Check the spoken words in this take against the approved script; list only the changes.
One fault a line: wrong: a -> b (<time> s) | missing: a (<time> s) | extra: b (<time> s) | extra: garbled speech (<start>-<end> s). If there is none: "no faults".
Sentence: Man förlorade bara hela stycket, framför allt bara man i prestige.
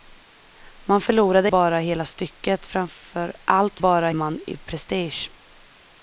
no faults